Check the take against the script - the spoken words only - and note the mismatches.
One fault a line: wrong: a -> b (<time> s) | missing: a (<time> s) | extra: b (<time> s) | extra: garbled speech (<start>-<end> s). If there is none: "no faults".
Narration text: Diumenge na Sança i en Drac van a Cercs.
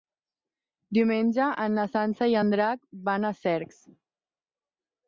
no faults